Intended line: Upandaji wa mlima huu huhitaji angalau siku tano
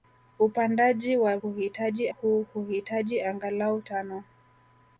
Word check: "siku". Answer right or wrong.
wrong